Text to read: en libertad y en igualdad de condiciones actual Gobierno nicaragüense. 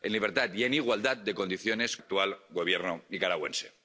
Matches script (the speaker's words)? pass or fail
pass